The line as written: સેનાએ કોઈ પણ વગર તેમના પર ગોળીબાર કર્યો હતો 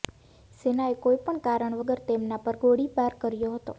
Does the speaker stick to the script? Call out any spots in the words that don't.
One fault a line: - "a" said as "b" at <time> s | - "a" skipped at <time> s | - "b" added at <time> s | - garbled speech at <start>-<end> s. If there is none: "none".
- "કારણ" added at 1.4 s